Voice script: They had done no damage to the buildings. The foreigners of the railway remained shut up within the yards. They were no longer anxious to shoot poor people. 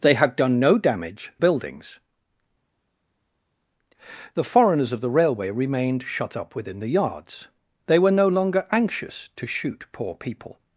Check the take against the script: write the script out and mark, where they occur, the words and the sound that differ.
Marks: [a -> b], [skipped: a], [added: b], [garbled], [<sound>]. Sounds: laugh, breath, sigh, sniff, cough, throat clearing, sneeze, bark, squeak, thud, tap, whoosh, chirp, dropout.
They had done no damage [skipped: to the] buildings. The foreigners of the railway remained shut up within the yards. They were no longer anxious to shoot poor people.